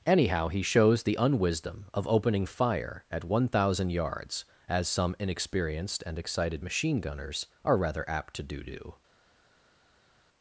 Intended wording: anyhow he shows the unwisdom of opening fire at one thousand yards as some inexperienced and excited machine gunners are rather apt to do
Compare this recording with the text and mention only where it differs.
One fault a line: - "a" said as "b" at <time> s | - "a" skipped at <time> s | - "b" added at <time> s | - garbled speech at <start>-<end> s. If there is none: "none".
- "do" added at 8.6 s